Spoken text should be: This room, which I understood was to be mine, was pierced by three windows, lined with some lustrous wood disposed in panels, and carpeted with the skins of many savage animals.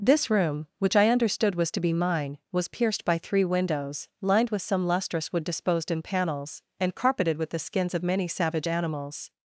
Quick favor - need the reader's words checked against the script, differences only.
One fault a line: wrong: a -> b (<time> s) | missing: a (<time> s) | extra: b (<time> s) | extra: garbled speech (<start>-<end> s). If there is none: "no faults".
no faults